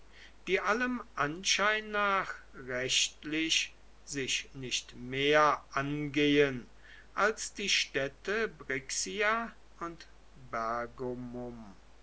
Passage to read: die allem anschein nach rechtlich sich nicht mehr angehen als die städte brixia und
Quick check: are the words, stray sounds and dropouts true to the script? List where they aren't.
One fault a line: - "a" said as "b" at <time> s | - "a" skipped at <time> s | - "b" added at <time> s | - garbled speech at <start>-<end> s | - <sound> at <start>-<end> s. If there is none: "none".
none